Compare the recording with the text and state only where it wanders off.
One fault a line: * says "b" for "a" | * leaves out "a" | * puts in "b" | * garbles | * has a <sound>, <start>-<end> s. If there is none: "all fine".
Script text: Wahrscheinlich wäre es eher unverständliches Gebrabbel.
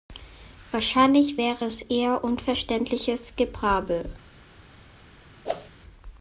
* has a whoosh, 5.4-5.7 s